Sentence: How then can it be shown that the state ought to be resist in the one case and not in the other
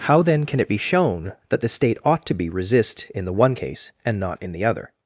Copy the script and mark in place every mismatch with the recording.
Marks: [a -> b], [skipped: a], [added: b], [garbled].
How then can it be shown that the state ought to be resist in the one case and not in the other